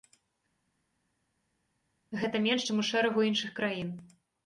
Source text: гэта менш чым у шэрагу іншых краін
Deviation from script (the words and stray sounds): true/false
false